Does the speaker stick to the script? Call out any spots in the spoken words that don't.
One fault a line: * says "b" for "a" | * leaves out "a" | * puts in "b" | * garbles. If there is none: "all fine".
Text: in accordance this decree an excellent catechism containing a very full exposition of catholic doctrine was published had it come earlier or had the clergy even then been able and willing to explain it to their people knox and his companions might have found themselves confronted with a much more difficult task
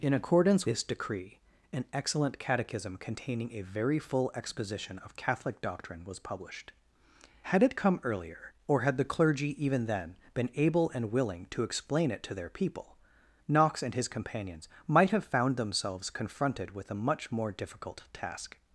all fine